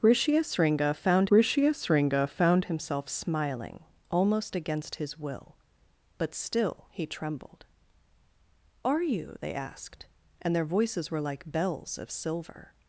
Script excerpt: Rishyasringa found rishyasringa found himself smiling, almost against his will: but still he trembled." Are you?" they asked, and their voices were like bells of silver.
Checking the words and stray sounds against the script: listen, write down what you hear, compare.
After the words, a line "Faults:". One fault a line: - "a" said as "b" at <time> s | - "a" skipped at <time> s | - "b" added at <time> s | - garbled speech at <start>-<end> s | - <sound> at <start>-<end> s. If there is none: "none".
Rishyasringa found rishyasringa found himself smiling, almost against his will: but still he trembled." Are you?" they asked, and their voices were like bells of silver.
Faults:
none